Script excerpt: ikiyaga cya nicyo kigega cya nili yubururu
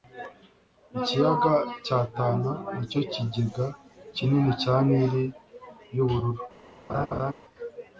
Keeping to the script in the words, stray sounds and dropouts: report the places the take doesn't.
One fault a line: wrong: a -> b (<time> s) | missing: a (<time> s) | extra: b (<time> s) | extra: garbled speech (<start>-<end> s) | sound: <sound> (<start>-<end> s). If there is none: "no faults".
extra: tana (2.1 s)
extra: kinini (4.2 s)
sound: laugh (6.9-7.3 s)